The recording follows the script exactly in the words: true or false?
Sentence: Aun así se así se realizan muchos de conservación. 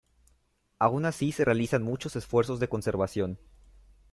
false